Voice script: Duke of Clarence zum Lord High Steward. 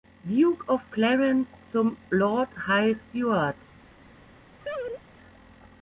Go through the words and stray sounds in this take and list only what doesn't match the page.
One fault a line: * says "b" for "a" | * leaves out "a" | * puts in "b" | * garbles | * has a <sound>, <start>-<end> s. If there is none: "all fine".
* has a laugh, 4.6-5.0 s